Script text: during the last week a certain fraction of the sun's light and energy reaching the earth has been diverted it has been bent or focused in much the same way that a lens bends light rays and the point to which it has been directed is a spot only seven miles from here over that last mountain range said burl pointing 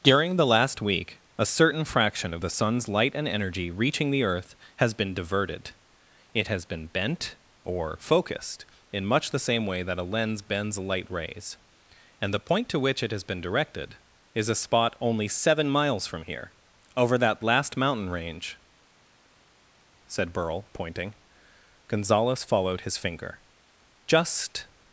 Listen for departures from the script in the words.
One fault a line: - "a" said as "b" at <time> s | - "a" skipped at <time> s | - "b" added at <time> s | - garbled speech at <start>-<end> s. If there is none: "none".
- "gonzales followed his finger just" added at 21.9 s